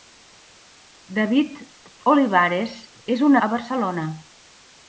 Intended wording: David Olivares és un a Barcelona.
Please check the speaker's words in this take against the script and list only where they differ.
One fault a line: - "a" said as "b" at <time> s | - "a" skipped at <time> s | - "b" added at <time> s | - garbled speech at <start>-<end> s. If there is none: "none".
none